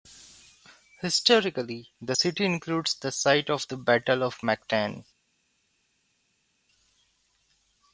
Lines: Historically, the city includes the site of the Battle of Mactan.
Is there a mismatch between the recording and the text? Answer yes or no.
no